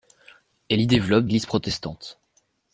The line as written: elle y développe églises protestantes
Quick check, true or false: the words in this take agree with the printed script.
true